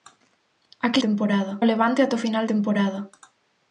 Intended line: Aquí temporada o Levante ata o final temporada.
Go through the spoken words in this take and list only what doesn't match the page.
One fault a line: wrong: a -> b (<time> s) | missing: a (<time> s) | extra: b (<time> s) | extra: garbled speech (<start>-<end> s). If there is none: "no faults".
no faults